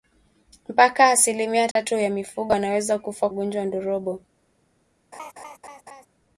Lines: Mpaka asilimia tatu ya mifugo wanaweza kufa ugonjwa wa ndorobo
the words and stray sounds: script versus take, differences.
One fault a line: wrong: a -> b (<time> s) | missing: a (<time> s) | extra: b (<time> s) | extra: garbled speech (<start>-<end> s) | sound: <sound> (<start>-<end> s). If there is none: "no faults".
sound: dropout (1.7-1.8 s)
sound: laugh (5.1-6.1 s)